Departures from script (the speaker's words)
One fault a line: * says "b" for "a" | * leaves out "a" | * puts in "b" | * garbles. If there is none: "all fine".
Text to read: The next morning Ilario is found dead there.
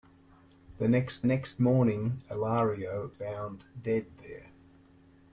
* puts in "next"
* leaves out "is"